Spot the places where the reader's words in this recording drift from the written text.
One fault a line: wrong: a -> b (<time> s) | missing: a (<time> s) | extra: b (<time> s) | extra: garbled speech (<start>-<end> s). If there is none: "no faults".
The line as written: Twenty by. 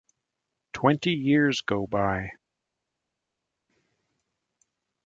extra: years go (1.1 s)